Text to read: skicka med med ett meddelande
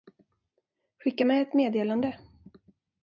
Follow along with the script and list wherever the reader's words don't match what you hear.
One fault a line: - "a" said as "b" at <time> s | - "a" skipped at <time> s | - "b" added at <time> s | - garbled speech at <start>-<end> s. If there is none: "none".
- "med" skipped at 1.4 s